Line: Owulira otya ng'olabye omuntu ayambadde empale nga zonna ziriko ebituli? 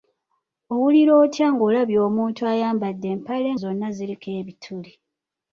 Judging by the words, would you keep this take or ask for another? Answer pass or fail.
fail